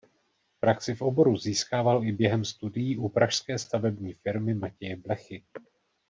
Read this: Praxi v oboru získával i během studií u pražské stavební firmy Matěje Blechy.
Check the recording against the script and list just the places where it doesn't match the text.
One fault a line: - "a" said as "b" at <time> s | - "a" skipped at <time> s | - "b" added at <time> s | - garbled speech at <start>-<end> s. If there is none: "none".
none